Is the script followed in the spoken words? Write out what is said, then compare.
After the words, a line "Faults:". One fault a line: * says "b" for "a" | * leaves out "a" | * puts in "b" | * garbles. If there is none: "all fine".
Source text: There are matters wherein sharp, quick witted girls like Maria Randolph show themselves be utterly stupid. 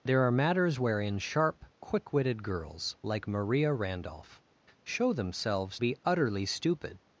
There are matters wherein sharp, quick witted girls like Maria Randolph show themselves be utterly stupid.
Faults:
all fine